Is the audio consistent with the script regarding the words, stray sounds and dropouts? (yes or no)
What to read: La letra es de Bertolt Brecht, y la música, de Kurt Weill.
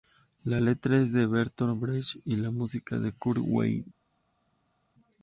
yes